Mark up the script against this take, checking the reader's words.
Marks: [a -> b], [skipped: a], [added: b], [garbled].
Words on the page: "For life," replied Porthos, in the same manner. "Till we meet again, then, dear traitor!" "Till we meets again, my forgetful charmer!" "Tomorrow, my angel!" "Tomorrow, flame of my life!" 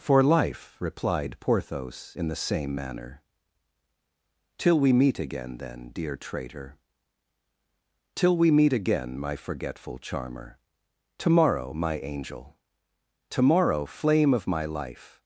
"For life," replied Porthos, in the same manner. "Till we meet again, then, dear traitor!" "Till we [meets -> meet] again, my forgetful charmer!" "Tomorrow, my angel!" "Tomorrow, flame of my life!"